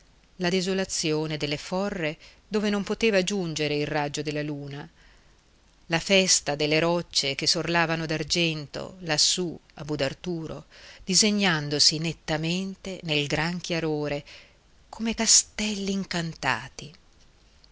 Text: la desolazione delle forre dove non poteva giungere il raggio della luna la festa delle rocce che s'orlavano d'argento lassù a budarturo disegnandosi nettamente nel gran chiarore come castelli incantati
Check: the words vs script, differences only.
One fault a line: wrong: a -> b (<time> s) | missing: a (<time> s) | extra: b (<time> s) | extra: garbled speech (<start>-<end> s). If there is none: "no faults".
no faults